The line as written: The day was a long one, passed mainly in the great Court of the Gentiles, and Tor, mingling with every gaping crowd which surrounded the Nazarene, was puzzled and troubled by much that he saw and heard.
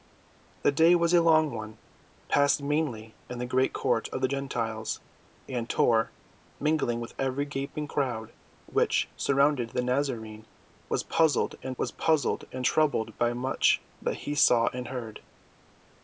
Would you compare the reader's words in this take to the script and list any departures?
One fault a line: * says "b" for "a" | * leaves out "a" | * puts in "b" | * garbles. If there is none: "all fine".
* puts in "was puzzled and"